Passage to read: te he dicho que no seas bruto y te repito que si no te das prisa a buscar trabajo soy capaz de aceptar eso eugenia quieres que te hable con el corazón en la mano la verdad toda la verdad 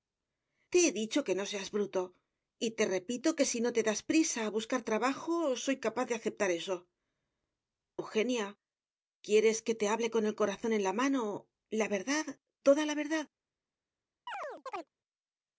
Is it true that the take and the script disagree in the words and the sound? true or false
true